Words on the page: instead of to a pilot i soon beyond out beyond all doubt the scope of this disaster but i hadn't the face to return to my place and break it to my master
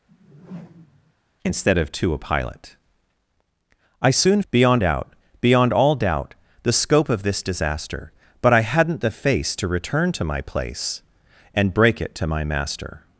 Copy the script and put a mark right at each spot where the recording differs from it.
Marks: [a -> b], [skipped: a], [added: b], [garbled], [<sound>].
[whoosh] instead of to a pilot i soon beyond out beyond all doubt the scope of this disaster but i hadn't the face to return to my place and break it to my master